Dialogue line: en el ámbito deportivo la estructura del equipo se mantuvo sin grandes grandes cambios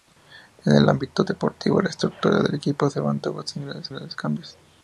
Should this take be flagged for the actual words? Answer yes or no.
no